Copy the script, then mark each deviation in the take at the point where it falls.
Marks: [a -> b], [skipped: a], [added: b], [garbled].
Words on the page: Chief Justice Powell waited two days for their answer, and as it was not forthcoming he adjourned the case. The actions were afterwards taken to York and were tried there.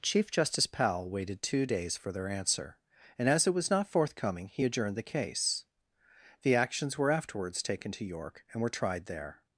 Chief Justice Powell waited two days for their answer, and as it was not forthcoming he adjourned the case. The actions were afterwards taken to York and were tried there.